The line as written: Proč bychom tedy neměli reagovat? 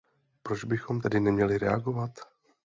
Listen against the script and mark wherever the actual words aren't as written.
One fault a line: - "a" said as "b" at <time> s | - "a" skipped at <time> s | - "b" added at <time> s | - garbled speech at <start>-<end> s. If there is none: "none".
none